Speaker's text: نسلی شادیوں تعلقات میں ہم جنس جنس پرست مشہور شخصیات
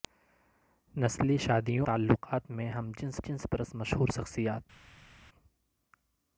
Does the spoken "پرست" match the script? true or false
true